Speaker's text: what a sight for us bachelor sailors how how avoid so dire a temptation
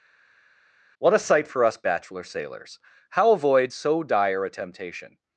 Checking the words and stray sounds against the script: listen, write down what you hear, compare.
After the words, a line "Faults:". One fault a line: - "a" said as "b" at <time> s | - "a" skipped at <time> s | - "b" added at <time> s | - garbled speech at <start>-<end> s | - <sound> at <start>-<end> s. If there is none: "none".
what a sight for us bachelor sailors how avoid so dire a temptation
Faults:
- "how" skipped at 3.3 s